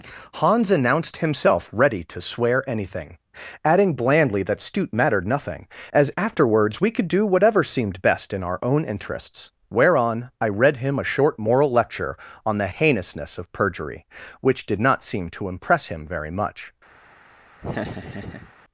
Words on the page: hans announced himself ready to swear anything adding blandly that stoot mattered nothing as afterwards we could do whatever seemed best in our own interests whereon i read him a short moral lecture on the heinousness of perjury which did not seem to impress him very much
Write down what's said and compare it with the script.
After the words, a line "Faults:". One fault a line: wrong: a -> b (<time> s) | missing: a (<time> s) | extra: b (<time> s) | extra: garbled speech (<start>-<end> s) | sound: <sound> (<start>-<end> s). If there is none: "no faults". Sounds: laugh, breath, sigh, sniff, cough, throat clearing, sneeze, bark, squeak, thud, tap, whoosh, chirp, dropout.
hans announced himself ready to swear anything adding blandly that stoot mattered nothing as afterwards we could do whatever seemed best in our own interests whereon i read him a short moral lecture on the heinousness of perjury which did not seem to impress him very much
Faults:
sound: laugh (17.6-18.5 s)